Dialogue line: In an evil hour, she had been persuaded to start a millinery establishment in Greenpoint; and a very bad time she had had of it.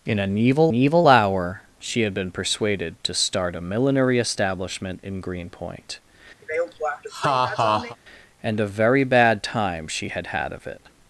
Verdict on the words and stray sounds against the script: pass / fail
fail